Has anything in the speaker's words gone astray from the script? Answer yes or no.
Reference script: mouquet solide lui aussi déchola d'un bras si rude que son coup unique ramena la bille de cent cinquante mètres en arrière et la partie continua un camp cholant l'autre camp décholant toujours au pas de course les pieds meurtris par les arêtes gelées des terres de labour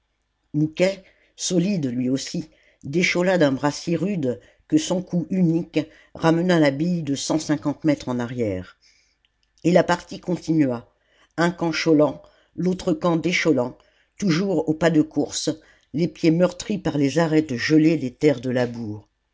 no